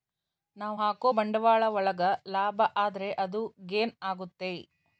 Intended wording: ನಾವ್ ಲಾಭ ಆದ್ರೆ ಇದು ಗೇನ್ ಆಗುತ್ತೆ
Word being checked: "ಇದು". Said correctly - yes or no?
no